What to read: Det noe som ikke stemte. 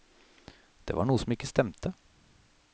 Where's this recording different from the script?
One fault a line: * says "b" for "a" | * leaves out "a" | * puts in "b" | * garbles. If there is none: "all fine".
* puts in "var"